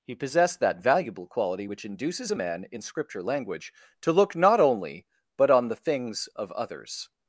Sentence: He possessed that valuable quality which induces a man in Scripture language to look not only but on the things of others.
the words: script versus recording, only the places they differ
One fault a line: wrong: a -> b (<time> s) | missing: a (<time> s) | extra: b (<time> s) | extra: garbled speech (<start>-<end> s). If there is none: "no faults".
no faults